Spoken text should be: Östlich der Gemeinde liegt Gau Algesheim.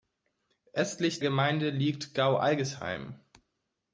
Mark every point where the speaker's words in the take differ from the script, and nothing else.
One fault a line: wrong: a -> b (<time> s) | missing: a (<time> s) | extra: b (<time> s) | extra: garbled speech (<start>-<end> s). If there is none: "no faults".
missing: der (1.2 s)